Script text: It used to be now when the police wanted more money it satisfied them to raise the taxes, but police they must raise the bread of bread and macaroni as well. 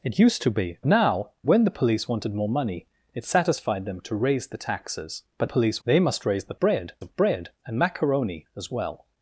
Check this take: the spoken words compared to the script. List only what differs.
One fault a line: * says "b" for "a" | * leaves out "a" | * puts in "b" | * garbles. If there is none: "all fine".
all fine